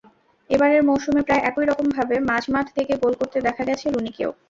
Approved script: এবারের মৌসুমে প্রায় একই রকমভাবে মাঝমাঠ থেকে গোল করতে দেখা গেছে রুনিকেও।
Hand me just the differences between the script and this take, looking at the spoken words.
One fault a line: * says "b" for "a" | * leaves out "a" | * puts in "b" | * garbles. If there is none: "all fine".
all fine